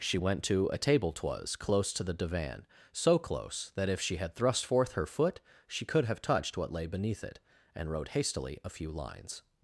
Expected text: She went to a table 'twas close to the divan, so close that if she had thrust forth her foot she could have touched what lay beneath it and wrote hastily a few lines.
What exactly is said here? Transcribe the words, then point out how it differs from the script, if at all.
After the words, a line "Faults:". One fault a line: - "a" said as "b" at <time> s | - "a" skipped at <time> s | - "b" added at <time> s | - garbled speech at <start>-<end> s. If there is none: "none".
She went to a table 'twas close to the divan, so close that if she had thrust forth her foot she could have touched what lay beneath it and wrote hastily a few lines.
Faults:
none